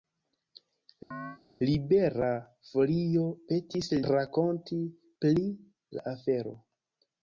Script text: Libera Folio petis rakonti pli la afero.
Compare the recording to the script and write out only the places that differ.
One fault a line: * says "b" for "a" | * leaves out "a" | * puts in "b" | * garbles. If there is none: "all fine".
all fine